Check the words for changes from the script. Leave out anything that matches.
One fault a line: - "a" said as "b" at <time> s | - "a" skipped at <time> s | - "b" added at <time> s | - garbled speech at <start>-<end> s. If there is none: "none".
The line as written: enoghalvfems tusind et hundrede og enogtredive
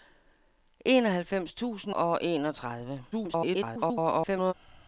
- "et hundrede" skipped at 1.9 s
- garbled speech at 3.1-4.5 s